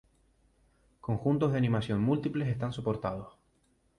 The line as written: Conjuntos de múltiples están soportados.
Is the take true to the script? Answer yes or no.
no